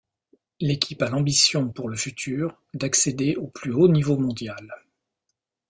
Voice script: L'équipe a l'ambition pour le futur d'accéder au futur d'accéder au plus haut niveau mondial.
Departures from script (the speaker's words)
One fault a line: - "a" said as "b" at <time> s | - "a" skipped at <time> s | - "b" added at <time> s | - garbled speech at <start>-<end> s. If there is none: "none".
- "futur d'accéder au" skipped at 3.5 s